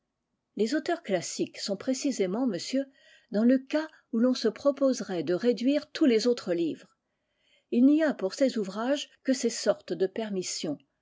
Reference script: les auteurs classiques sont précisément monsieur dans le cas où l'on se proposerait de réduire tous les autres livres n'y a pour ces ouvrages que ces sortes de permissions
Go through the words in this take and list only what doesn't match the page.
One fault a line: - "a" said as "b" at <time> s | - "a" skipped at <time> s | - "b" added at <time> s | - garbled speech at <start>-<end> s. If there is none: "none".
- "il" added at 7.7 s